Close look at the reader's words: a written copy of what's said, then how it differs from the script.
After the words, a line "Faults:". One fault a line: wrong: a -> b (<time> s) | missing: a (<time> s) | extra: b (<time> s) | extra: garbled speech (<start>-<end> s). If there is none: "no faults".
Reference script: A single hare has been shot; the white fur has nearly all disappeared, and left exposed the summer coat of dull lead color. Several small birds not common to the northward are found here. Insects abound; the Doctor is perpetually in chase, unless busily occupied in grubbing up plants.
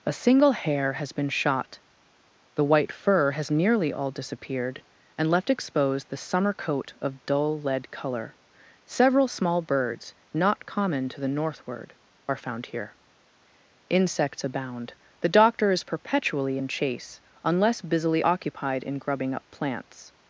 A single hare has been shot; the white fur has nearly all disappeared, and left exposed the summer coat of dull lead color. Several small birds not common to the northward are found here. Insects abound; the Doctor is perpetually in chase, unless busily occupied in grubbing up plants.
Faults:
no faults